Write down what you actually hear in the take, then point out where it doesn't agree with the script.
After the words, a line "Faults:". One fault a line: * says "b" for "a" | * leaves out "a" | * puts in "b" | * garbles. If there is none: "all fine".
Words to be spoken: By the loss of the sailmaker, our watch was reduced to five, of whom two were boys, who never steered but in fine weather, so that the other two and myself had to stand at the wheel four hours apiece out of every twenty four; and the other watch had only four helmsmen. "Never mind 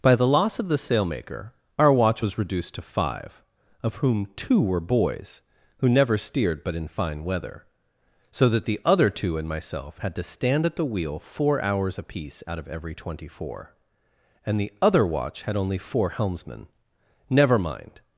By the loss of the sailmaker, our watch was reduced to five, of whom two were boys, who never steered but in fine weather, so that the other two and myself had to stand at the wheel four hours apiece out of every twenty four; and the other watch had only four helmsmen. "Never mind
Faults:
all fine